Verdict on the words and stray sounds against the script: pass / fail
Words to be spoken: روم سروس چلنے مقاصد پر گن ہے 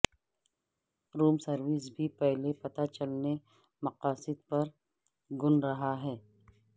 fail